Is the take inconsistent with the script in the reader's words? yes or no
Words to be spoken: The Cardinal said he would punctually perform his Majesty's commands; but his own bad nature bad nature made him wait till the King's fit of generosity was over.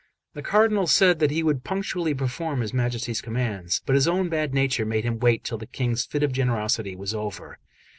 yes